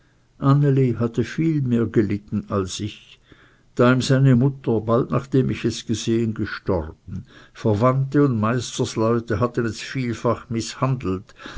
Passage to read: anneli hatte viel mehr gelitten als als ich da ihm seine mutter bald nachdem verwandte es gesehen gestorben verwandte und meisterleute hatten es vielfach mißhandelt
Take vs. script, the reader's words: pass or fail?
fail